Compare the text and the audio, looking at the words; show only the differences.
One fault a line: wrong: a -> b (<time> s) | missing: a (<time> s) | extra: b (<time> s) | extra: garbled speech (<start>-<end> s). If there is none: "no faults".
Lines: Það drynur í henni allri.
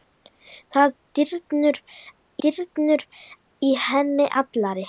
extra: drynur (2.5 s)